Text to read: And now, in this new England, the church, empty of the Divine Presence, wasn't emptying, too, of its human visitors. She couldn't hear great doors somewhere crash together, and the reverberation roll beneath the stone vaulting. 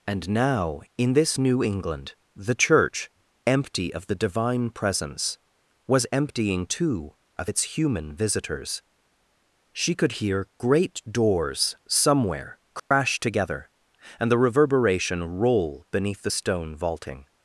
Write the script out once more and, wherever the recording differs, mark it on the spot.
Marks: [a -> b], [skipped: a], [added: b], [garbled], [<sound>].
And now, in this new England, the church, empty of the Divine Presence, [wasn't -> was] emptying, too, of its human visitors. She [couldn't -> could] hear great doors somewhere crash [dropout] together, and the reverberation roll beneath the stone vaulting.